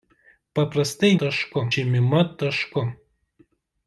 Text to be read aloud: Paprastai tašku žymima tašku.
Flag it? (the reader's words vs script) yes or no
no